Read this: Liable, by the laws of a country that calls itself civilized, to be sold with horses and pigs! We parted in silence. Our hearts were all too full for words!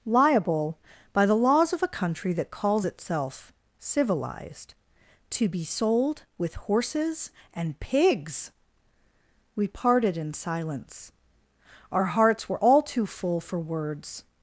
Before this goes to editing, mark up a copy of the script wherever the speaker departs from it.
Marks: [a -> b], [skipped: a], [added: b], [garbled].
Liable, by the laws of a country that calls itself civilized, to be sold with horses and pigs! We parted in silence. Our hearts were all too full for words!